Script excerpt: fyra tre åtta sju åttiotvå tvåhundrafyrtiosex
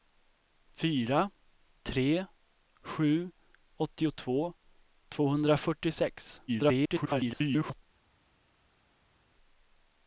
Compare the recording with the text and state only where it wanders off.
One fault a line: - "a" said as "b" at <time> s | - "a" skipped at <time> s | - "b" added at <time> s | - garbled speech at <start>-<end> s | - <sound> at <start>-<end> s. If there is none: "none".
- "åtta" skipped at 2.2 s
- garbled speech at 6.5-7.8 s